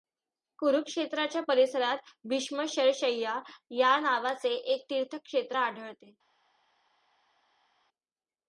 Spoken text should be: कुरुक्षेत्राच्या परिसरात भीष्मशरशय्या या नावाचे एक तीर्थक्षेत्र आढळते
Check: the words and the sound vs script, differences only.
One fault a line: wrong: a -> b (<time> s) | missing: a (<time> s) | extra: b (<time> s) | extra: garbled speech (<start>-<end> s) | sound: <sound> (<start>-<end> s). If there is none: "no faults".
no faults